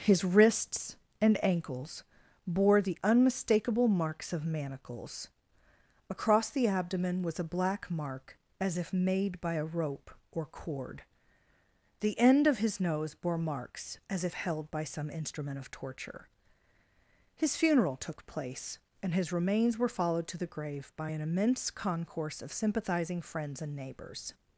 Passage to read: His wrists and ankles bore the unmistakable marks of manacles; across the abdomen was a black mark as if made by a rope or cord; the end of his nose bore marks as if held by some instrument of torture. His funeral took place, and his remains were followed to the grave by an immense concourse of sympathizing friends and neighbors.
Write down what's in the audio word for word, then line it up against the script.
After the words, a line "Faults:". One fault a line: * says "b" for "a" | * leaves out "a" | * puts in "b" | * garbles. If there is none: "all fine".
His wrists and ankles bore the unmistakable marks of manacles; across the abdomen was a black mark as if made by a rope or cord; the end of his nose bore marks as if held by some instrument of torture. His funeral took place, and his remains were followed to the grave by an immense concourse of sympathizing friends and neighbors.
Faults:
all fine